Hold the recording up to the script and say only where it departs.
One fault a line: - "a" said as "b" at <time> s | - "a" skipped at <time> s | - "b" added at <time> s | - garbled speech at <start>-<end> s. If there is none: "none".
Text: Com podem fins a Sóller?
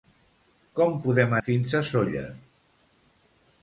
none